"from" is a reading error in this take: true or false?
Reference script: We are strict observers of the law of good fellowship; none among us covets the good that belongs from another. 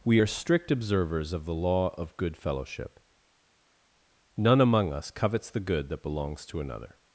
true